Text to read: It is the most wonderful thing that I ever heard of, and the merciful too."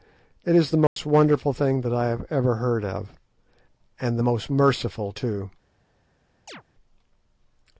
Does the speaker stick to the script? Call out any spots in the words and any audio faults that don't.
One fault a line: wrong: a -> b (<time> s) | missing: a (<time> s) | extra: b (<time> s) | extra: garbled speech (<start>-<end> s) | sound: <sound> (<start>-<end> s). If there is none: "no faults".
sound: dropout (0.9-1.0 s)
extra: have (2.1 s)
extra: most (4.2 s)
sound: chirp (6.5-6.6 s)